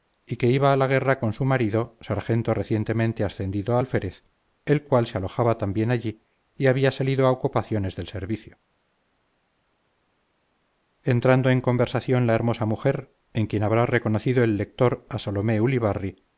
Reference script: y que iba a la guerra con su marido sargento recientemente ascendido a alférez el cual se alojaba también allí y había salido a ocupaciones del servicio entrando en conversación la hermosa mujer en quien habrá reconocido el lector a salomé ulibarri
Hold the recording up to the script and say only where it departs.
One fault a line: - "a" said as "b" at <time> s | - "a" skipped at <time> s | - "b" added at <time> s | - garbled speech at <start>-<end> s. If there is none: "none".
none